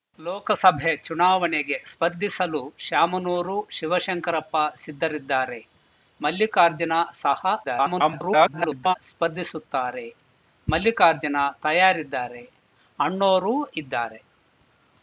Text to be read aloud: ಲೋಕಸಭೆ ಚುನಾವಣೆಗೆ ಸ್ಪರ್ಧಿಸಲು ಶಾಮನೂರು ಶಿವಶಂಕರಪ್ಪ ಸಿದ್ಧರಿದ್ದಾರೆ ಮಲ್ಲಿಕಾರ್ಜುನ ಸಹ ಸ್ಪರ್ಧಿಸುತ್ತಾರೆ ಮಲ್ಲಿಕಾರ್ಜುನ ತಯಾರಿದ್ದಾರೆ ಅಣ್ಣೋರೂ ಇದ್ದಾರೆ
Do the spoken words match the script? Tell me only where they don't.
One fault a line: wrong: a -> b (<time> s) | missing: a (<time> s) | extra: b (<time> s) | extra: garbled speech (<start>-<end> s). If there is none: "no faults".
extra: garbled speech (7.6-9.0 s)